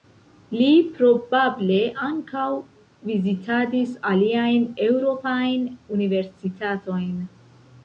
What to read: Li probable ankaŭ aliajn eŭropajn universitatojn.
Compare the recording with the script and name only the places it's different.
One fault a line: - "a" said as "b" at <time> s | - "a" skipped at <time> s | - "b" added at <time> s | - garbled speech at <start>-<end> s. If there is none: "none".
- "vizitadis" added at 3.1 s